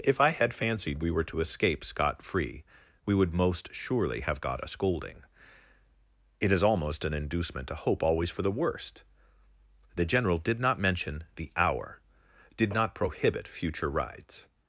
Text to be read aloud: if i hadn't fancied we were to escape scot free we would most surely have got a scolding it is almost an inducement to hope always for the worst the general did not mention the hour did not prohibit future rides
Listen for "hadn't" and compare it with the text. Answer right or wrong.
wrong